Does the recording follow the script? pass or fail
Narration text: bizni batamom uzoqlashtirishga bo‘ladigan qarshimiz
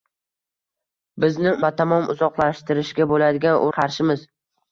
pass